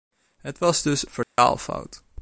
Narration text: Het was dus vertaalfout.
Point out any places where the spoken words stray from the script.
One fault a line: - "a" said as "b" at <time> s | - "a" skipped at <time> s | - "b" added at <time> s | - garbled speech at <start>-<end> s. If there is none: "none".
none